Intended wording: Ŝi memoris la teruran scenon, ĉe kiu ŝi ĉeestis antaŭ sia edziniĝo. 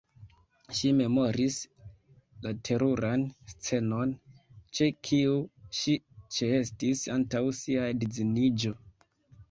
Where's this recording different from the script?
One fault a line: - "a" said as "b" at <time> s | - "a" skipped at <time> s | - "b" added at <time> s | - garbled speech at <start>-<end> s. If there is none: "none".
none